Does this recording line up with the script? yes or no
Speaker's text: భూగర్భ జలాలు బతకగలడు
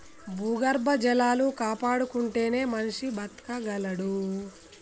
no